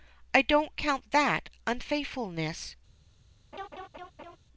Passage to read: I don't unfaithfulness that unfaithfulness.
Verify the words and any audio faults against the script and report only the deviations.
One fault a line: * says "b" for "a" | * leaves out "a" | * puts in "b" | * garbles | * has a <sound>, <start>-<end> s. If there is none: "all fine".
* says "count" for "unfaithfulness"
* has a laugh, 3.5-4.4 s